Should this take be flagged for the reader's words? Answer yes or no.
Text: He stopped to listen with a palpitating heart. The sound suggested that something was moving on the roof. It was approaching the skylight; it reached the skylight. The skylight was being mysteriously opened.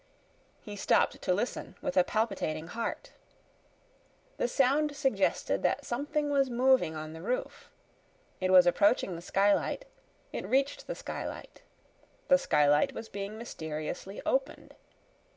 no